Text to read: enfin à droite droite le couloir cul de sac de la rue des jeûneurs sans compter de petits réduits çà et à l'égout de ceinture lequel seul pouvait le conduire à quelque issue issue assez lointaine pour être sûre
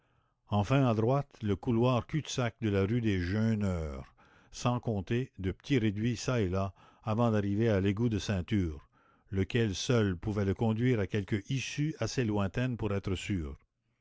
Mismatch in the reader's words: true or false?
true